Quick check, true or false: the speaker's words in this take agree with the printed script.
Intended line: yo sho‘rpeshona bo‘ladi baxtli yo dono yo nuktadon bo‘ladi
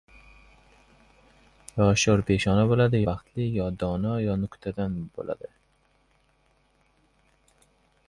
true